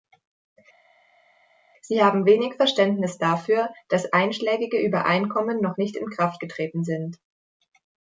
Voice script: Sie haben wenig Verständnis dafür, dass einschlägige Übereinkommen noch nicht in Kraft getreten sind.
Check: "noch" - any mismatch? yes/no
no